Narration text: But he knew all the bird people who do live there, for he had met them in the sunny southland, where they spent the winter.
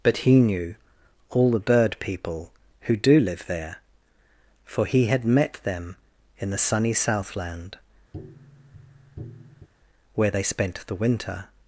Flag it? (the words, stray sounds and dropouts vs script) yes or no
yes